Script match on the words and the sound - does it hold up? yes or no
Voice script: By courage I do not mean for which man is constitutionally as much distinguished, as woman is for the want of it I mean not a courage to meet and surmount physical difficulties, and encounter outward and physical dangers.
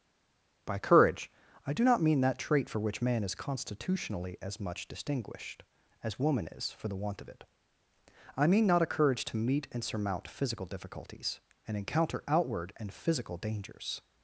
no